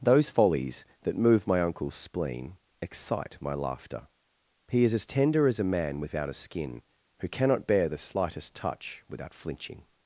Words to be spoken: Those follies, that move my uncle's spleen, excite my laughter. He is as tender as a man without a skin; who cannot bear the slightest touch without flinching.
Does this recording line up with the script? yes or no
yes